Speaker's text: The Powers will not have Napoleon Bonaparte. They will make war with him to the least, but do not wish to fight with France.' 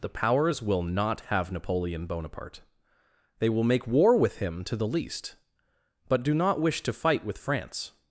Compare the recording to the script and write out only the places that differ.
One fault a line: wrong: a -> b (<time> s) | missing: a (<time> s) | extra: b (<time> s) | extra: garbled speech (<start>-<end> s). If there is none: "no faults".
no faults